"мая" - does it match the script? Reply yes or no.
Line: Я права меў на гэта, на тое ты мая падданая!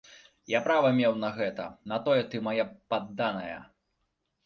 yes